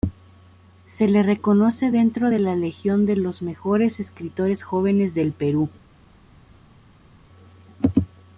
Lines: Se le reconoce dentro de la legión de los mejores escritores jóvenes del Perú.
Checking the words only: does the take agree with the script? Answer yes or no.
yes